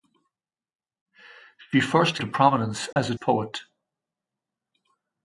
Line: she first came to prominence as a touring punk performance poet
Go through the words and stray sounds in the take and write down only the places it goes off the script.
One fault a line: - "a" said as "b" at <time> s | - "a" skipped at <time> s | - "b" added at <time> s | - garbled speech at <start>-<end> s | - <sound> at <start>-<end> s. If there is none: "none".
- "came" skipped at 2.2 s
- dropout at 2.9-3.0 s
- "touring punk performance" skipped at 3.1 s